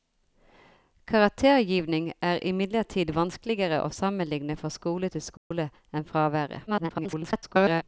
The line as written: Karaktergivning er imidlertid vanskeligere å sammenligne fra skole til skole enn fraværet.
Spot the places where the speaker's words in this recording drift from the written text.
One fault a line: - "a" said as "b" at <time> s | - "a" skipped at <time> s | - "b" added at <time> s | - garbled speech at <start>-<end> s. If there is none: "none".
- garbled speech at 6.7-7.8 s